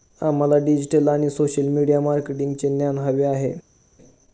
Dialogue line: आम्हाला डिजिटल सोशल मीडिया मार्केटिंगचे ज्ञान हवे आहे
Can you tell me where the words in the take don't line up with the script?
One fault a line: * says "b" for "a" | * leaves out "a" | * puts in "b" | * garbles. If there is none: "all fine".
* puts in "आणि"